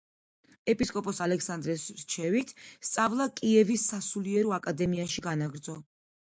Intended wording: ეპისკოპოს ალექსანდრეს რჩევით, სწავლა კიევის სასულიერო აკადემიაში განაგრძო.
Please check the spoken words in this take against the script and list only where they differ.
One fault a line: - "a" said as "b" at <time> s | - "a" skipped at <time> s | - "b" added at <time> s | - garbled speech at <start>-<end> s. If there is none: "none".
none